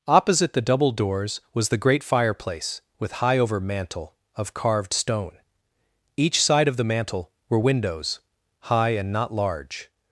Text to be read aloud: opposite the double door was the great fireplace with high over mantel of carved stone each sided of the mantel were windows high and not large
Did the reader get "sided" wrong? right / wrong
wrong